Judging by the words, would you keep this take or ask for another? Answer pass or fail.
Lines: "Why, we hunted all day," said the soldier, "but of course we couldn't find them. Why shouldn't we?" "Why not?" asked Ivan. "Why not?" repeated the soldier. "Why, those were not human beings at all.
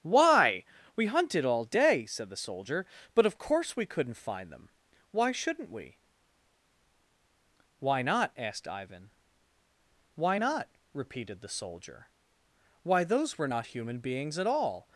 pass